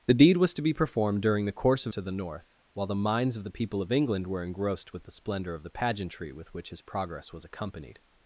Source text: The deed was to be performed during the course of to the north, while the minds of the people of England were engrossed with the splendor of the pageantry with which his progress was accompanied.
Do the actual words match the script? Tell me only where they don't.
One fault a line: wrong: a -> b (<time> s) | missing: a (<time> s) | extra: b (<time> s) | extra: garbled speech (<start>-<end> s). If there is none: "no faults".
no faults